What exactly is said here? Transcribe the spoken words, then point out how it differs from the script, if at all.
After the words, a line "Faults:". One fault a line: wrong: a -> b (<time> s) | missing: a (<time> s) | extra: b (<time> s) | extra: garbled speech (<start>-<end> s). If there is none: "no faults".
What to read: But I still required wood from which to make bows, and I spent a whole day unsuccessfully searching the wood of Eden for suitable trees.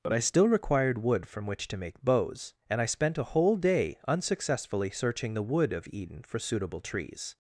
But I still required wood from which to make bows, and I spent a whole day unsuccessfully searching the wood of Eden for suitable trees.
Faults:
no faults